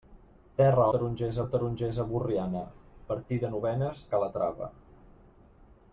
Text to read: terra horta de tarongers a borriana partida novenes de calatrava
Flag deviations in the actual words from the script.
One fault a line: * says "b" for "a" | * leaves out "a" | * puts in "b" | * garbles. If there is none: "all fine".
* says "tarongers" for "horta"
* leaves out "de"